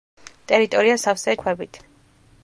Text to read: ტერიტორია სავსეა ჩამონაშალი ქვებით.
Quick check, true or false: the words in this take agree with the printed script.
false